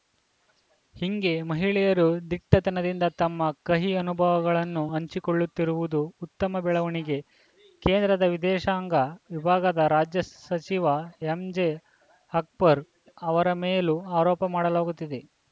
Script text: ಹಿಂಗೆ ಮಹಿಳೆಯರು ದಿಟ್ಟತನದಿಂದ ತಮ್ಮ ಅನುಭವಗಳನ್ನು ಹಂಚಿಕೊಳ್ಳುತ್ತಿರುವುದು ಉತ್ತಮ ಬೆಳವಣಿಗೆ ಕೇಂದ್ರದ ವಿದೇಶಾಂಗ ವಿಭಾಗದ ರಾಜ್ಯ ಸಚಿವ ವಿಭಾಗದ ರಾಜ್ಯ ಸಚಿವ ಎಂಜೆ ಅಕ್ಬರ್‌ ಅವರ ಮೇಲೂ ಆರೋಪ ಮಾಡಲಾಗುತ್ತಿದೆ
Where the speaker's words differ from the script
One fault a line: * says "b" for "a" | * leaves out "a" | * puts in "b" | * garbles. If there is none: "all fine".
* puts in "ಕಹಿ"
* leaves out "ವಿಭಾಗದ ರಾಜ್ಯ ಸಚಿವ"